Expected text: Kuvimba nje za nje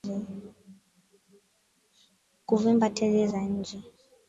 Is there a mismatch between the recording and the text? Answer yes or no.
yes